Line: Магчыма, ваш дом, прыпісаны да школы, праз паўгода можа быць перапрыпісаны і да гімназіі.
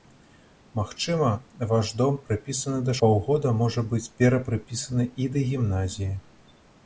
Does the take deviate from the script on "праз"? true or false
true